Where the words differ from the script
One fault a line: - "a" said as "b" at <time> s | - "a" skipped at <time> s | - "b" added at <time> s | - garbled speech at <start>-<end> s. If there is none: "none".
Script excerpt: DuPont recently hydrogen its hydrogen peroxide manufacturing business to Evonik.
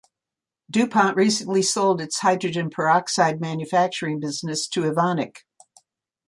- "hydrogen" said as "sold" at 1.6 s